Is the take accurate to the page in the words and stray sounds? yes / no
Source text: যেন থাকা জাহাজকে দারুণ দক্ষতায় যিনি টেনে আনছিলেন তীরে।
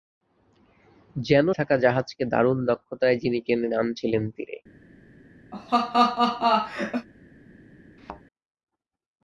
no